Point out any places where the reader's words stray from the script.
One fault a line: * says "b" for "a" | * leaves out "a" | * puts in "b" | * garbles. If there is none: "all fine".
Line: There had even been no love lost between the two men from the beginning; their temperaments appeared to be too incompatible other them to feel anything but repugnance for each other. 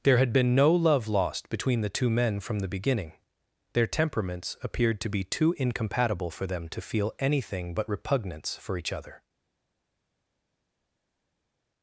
* leaves out "even"
* says "for" for "other"